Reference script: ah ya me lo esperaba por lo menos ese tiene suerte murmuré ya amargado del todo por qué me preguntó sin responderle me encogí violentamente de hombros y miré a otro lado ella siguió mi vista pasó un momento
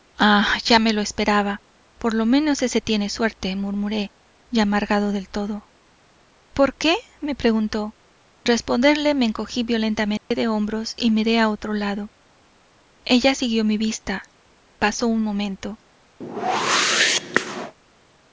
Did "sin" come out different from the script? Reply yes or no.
yes